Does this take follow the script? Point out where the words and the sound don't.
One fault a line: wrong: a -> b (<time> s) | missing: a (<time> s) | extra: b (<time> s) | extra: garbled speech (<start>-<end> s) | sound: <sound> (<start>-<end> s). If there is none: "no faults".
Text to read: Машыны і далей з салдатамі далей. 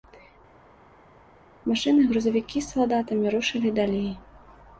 wrong: далей -> грузавікі (2.1 s)
extra: рушылі (3.4 s)